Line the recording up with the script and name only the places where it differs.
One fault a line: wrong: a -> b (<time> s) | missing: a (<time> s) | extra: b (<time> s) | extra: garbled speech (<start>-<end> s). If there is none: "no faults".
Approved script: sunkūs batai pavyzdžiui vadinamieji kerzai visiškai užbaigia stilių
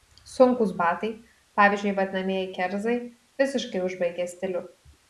no faults